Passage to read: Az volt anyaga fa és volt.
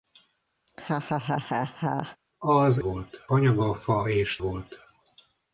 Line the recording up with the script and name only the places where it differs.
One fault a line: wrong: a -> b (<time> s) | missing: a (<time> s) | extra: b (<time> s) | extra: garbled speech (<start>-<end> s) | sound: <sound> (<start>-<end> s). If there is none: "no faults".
sound: laugh (0.7-2.2 s)